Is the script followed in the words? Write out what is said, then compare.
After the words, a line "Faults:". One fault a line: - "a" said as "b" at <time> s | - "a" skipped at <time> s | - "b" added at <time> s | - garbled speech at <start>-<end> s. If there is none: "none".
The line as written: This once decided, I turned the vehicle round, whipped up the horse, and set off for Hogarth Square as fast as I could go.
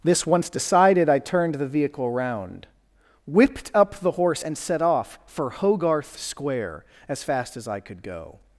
This once decided, I turned the vehicle round, whipped up the horse, and set off for Hogarth Square as fast as I could go.
Faults:
none